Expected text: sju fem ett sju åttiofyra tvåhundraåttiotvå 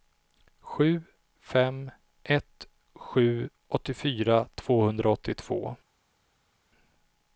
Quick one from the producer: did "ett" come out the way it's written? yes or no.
yes